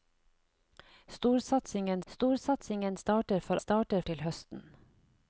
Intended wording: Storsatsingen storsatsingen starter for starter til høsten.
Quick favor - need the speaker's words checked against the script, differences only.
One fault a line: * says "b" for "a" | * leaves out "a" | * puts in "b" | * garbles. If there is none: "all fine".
all fine